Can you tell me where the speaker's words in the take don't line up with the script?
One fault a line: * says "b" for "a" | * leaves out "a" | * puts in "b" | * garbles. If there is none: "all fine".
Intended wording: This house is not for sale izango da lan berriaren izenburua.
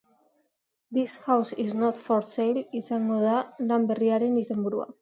all fine